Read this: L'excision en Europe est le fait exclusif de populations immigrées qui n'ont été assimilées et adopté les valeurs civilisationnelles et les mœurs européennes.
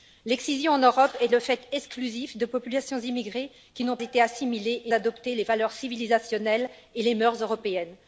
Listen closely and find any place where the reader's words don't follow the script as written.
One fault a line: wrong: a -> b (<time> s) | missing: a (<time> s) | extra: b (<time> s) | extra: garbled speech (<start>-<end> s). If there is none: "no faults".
no faults